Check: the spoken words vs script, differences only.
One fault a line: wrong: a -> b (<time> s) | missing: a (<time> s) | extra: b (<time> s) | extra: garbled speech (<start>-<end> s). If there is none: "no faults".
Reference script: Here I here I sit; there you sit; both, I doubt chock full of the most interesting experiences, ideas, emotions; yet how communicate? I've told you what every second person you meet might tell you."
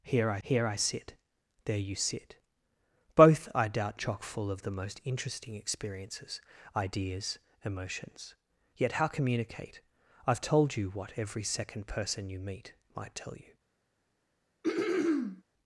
no faults